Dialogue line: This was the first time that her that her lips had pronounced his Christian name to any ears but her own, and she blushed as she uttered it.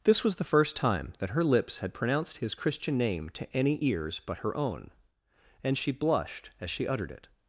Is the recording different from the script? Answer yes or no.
yes